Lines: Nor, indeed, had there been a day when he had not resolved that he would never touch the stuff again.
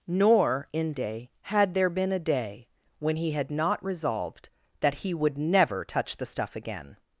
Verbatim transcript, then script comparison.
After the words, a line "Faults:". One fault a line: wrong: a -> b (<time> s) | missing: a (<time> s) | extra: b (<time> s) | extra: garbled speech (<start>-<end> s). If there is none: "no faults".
Nor, inde, had there been a day when he had not resolved that he would never touch the stuff again.
Faults:
wrong: indeed -> inde (0.7 s)